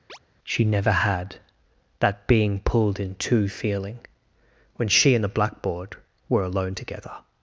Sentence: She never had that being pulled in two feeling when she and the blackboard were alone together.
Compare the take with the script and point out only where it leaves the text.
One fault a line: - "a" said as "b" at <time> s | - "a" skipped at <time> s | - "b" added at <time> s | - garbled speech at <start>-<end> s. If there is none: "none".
none